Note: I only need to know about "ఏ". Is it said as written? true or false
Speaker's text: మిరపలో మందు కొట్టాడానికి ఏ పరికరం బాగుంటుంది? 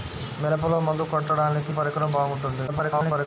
false